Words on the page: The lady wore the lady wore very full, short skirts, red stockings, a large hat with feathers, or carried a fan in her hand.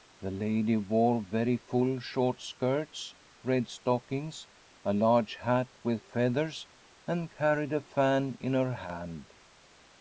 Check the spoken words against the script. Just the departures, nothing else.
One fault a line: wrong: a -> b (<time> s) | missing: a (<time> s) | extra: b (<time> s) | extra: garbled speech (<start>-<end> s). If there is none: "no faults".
missing: the lady wore (1.2 s)
wrong: or -> and (7.1 s)